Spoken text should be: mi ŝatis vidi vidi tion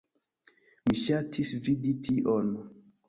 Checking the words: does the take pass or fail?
fail